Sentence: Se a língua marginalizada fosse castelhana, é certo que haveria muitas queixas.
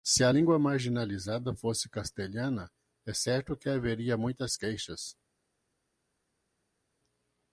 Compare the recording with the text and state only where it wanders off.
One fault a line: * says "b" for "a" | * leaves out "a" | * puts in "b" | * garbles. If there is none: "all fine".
all fine